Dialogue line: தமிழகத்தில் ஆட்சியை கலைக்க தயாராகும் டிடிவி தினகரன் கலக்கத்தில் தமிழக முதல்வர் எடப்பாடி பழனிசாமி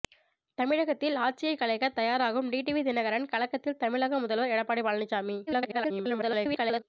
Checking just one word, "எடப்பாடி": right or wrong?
right